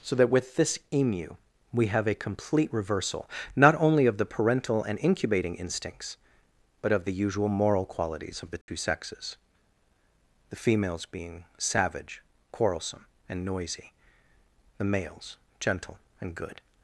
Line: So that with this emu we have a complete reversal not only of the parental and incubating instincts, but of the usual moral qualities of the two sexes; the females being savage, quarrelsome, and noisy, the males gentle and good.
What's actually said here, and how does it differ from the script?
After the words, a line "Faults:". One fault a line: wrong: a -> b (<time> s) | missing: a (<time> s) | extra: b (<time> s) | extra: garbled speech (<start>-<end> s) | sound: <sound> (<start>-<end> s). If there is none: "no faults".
So that with this emu we have a complete reversal not only of the parental and incubating instincts, but of the usual moral qualities of the two sexes; the females being savage, quarrelsome, and noisy, the males gentle and good.
Faults:
sound: dropout (8.6-8.7 s)